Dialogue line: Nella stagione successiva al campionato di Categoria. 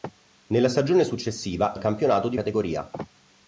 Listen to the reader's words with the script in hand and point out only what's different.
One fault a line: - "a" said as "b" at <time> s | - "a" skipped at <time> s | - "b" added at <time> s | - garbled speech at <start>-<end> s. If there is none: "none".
none